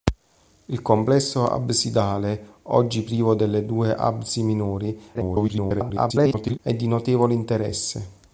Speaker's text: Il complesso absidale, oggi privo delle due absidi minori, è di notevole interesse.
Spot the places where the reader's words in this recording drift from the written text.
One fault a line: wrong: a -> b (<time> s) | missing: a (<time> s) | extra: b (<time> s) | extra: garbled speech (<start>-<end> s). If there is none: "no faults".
extra: garbled speech (5.1-6.6 s)